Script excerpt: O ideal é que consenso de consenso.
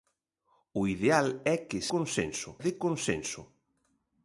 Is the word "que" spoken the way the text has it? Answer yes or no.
yes